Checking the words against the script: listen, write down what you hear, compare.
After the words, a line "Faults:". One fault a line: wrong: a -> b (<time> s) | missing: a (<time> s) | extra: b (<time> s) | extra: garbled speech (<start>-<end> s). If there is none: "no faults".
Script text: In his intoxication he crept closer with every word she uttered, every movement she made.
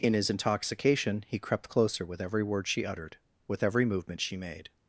In his intoxication he crept closer with every word she uttered, with every movement she made.
Faults:
extra: with (3.5 s)